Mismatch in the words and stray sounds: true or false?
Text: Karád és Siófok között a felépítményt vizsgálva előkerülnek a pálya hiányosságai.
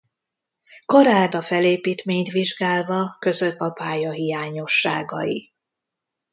true